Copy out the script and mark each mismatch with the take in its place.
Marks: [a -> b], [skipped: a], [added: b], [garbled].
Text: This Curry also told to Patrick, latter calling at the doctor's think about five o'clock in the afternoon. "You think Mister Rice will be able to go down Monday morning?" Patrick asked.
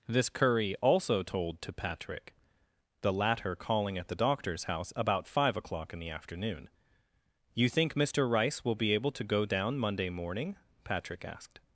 This Curry also told to Patrick, [added: the] latter calling at the doctor's [think -> house] about five o'clock in the afternoon. "You think Mister Rice will be able to go down Monday morning?" Patrick asked.